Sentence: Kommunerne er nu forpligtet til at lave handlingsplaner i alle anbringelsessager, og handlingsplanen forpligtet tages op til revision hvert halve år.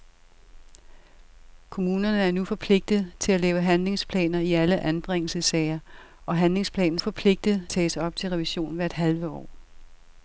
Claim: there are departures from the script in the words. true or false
false